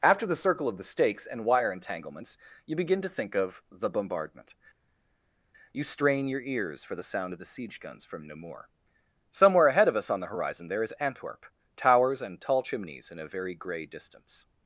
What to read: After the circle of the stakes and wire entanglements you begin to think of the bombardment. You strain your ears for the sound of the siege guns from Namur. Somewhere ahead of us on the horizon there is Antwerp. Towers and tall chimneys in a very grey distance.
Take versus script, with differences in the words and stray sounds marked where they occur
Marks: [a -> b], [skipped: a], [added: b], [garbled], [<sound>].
After the circle of the stakes and wire entanglements you begin to think of the bombardment. You strain your ears for the sound of the siege guns from Namur. Somewhere ahead of us on the horizon there is Antwerp. Towers and tall chimneys in a very grey distance.